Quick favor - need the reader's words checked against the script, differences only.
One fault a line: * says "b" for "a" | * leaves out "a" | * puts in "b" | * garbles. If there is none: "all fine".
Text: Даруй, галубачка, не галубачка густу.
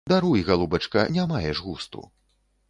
* says "маеш" for "галубачка"